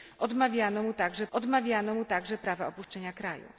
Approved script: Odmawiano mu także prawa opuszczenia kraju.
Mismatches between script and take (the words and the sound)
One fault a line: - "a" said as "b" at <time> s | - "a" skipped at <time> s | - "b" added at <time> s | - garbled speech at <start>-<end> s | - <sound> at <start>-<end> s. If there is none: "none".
- "odmawiano mu także" added at 1.3 s
- dropout at 2.8-2.9 s